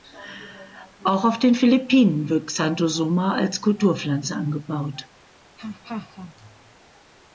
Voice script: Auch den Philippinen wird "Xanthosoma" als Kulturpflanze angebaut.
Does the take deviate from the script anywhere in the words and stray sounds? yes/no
yes